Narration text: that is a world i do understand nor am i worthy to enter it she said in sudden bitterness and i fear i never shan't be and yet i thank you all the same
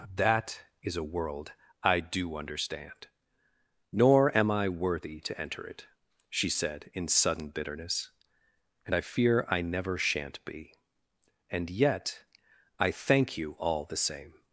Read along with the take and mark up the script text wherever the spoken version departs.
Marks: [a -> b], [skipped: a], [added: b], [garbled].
that is a world i do understand nor am i worthy to enter it she said in sudden bitterness and i fear i never shan't be and yet i thank you all the same